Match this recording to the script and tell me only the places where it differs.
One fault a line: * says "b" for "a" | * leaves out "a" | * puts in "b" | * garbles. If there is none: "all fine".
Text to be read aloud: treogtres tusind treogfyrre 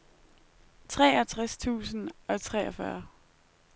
* puts in "og"